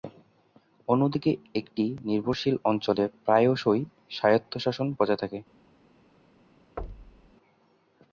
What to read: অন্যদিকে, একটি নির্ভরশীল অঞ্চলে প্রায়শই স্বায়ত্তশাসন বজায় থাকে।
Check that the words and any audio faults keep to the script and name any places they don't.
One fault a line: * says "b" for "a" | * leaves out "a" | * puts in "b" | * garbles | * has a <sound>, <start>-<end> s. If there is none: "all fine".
* has a thud, 6.8-7.3 s